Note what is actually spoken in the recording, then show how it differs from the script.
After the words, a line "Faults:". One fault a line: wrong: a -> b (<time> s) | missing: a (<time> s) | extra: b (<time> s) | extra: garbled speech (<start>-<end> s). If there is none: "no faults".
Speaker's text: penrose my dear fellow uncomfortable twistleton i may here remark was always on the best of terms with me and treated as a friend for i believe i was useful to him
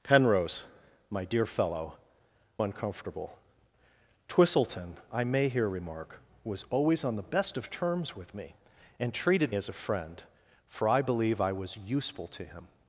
penrose my dear fellow uncomfortable twistleton i may here remark was always on the best of terms with me and treated as a friend for i believe i was useful to him
Faults:
no faults